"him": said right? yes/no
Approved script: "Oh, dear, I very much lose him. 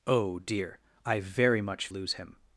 yes